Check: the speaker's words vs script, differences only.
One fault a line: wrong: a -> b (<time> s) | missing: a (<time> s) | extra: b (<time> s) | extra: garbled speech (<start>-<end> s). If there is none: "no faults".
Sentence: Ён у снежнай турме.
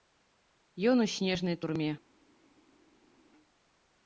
no faults